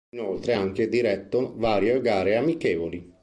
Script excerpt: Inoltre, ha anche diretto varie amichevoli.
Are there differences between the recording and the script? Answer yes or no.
yes